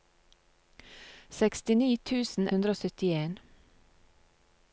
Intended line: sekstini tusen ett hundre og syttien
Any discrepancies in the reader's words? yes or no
yes